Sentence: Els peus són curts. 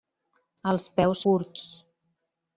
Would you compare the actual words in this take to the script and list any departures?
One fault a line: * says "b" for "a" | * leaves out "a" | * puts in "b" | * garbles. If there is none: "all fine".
* leaves out "són"